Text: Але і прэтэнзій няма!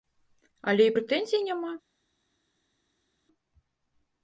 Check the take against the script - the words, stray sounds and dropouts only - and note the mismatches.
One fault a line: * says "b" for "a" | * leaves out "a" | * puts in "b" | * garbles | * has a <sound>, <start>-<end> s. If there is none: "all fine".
all fine